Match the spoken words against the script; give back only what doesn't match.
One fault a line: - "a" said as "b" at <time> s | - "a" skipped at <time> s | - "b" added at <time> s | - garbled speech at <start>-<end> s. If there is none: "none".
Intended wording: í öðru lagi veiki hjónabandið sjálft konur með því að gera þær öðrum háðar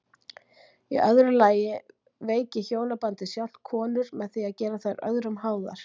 none